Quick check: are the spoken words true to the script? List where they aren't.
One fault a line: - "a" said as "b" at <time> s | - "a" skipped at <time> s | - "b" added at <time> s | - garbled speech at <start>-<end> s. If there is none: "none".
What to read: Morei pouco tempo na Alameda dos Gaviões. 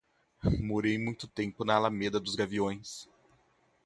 - "pouco" said as "muito" at 1.0 s